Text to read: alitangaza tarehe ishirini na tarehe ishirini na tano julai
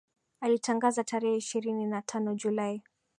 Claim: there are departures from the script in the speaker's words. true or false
true